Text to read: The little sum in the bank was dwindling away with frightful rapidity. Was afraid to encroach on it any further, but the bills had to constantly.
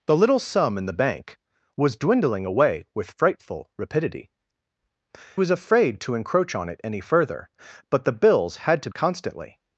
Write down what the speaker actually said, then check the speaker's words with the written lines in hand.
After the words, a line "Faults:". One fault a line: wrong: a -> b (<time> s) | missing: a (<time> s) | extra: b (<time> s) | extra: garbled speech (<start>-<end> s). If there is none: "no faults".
The little sum in the bank was dwindling away with frightful rapidity. Was afraid to encroach on it any further, but the bills had to constantly.
Faults:
no faults